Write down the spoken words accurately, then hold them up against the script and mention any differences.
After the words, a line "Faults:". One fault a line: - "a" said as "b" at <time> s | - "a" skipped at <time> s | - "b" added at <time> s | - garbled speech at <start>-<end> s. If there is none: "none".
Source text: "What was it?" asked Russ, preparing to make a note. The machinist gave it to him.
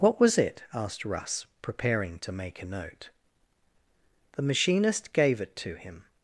"What was it?" asked Russ, preparing to make a note. The machinist gave it to him.
Faults:
none